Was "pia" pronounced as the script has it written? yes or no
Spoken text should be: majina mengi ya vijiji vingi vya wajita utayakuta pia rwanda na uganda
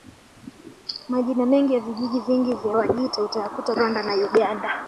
no